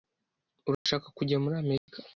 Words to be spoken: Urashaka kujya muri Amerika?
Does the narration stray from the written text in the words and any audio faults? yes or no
yes